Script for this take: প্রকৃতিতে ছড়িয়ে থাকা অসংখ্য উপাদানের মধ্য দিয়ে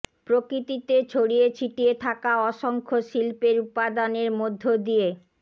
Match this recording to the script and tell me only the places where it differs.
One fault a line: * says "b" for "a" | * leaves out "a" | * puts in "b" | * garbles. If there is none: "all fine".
* puts in "ছিটিয়ে"
* puts in "শিল্পের"